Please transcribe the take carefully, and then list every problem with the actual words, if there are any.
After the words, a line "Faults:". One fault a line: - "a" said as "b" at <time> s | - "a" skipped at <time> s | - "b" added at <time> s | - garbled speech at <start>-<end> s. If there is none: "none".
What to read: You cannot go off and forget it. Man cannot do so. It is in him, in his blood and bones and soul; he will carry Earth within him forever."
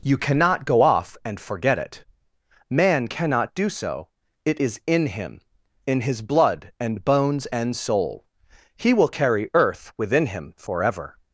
You cannot go off and forget it. Man cannot do so. It is in him, in his blood and bones and soul; he will carry Earth within him forever."
Faults:
none